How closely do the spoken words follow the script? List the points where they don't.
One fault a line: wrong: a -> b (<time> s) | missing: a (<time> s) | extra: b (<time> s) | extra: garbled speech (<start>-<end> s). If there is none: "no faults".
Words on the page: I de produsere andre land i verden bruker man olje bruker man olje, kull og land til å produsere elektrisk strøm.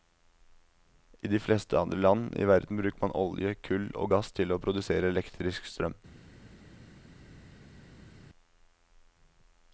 wrong: produsere -> fleste (1.4 s)
missing: bruker man olje (3.5 s)
wrong: land -> gass (4.1 s)